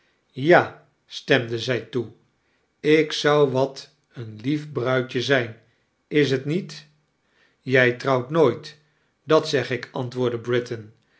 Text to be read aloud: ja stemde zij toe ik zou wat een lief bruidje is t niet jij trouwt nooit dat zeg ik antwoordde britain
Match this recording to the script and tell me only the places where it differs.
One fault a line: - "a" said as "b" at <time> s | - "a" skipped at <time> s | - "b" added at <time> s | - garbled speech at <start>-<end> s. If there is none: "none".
- "zijn" added at 5.2 s